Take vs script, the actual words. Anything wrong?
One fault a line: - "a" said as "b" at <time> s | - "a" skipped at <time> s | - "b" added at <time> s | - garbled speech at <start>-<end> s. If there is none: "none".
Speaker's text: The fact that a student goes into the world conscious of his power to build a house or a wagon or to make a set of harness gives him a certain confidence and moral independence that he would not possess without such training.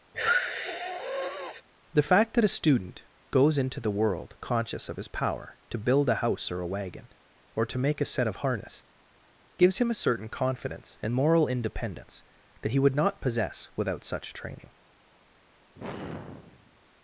none